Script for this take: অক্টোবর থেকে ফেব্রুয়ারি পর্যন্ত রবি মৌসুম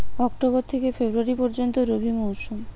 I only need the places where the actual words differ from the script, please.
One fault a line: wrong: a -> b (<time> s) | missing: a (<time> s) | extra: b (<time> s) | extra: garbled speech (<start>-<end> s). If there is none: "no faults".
no faults